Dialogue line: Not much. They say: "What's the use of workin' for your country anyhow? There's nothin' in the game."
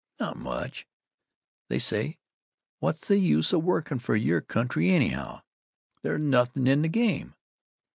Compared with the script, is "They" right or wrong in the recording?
right